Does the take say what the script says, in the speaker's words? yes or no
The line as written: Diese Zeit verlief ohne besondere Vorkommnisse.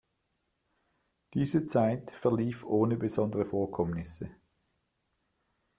yes